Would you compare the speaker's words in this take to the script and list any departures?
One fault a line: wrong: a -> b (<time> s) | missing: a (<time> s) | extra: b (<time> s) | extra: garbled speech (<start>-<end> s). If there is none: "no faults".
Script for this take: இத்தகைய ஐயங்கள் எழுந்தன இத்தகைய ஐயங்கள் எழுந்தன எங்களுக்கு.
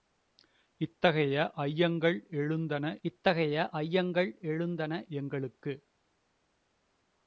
no faults